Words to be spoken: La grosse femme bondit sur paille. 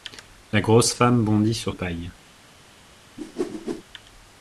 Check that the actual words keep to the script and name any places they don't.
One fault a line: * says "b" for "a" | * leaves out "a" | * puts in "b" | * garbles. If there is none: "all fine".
all fine